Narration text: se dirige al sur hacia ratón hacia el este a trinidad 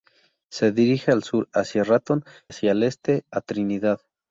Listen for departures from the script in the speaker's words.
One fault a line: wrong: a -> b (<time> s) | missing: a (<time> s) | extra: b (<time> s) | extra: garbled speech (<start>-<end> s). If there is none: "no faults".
no faults